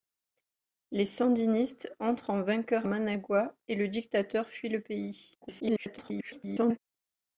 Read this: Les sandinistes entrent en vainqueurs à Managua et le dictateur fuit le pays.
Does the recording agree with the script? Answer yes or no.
no